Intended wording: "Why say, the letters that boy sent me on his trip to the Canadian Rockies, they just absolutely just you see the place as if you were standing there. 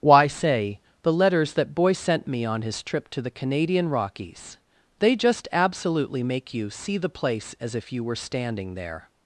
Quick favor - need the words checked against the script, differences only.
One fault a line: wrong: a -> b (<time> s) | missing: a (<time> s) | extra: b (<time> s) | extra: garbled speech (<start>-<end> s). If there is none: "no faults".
wrong: just -> make (6.2 s)